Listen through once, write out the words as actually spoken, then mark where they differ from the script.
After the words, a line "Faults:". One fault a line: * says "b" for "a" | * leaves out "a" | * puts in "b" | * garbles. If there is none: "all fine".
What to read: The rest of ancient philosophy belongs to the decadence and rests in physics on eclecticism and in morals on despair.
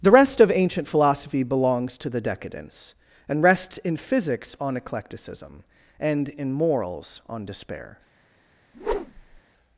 The rest of ancient philosophy belongs to the decadence and rests in physics on eclecticism and in morals on despair.
Faults:
all fine